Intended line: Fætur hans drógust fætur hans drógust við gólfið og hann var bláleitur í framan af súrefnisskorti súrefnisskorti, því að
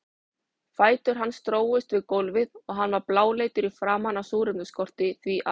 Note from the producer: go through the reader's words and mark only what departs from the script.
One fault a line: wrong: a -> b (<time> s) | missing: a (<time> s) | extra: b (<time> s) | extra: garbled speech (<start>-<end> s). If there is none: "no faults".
missing: fætur hans drógust (1.9 s)
missing: súrefnisskorti (5.1 s)